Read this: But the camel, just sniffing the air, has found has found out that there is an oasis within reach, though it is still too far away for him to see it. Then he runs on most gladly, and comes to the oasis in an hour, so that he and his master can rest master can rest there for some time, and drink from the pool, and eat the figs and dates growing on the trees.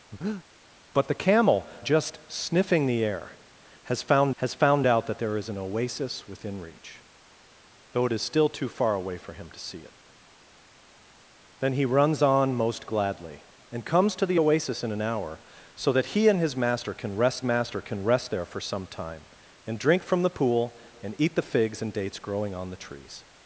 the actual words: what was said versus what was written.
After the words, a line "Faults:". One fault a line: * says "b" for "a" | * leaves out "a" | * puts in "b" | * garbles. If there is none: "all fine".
But the camel, just sniffing the air, has found has found out that there is an oasis within reach, though it is still too far away for him to see it. Then he runs on most gladly, and comes to the oasis in an hour, so that he and his master can rest master can rest there for some time, and drink from the pool, and eat the figs and dates growing on the trees.
Faults:
all fine